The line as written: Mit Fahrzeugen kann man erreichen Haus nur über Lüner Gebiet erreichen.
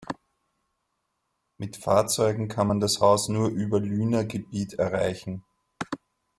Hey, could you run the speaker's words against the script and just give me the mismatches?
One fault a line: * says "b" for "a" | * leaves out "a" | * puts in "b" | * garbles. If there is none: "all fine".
* says "das" for "erreichen"